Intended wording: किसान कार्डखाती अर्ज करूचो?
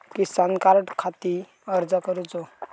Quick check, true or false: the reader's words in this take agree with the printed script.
true